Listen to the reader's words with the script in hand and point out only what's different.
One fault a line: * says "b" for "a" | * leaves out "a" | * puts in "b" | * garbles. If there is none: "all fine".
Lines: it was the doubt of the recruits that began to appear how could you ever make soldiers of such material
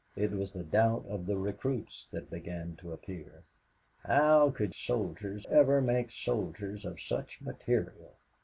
* says "soldiers" for "you"